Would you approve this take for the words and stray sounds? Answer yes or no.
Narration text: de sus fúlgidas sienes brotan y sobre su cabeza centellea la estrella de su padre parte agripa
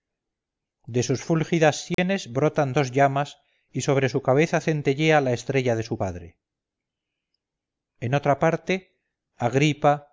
no